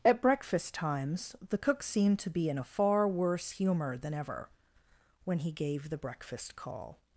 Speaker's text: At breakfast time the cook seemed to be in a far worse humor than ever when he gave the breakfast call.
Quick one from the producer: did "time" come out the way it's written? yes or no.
no